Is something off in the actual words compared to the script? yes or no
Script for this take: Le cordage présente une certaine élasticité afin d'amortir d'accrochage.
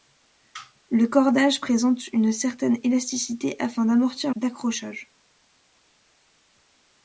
no